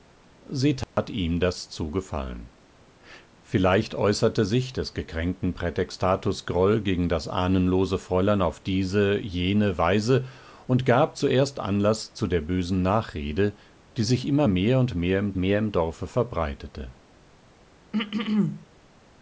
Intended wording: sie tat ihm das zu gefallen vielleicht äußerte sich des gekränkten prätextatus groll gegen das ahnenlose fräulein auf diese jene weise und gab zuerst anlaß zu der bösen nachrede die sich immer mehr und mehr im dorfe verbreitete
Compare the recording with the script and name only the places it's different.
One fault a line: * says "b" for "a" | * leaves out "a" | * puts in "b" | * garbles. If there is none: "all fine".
* puts in "mehr im"